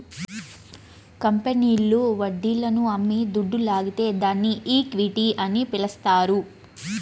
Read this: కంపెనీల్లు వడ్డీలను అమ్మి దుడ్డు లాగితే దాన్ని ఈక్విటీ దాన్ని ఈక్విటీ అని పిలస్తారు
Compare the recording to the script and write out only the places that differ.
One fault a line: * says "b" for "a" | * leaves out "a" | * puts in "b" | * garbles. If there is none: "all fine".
* leaves out "దాన్ని ఈక్విటీ"